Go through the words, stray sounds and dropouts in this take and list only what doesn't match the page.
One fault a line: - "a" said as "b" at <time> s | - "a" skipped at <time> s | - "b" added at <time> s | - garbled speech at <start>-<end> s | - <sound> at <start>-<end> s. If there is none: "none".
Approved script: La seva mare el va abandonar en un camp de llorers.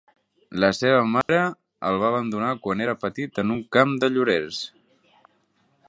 - dropout at 1.2-1.3 s
- "quan era petit" added at 2.7 s